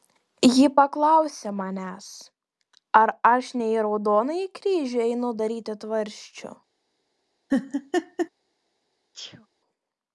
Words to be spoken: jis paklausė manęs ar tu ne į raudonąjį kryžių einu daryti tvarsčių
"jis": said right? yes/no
no